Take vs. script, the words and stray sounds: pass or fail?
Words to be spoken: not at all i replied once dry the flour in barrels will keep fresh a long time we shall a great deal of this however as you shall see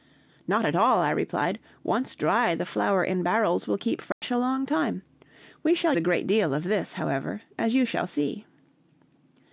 fail